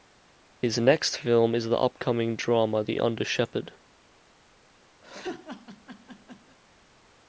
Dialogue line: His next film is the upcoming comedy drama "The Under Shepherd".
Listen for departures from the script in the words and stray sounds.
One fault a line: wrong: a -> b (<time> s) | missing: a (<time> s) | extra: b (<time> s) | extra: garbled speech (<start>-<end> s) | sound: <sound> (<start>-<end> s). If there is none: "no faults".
missing: comedy (2.4 s)
sound: laugh (5.0-6.6 s)